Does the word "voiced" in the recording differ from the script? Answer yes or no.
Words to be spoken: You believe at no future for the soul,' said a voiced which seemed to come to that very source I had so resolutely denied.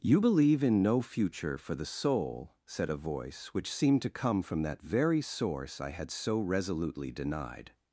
yes